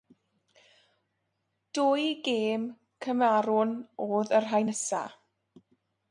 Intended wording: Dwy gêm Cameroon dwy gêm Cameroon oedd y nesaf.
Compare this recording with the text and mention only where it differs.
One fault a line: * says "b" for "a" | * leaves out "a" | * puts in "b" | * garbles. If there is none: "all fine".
* leaves out "dwy gêm Cameroon"
* puts in "rhai"